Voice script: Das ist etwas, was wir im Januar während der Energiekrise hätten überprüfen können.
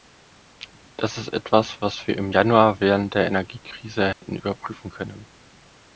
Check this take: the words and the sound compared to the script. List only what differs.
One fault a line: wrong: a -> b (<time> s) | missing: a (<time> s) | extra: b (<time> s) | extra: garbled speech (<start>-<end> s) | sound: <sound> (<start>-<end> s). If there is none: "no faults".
sound: dropout (4.1-4.2 s)